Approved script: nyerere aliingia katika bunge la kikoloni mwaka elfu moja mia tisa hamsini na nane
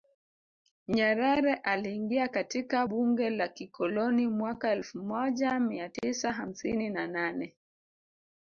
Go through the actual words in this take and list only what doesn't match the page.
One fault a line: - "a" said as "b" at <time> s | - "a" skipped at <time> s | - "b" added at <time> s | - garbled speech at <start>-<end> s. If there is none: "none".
none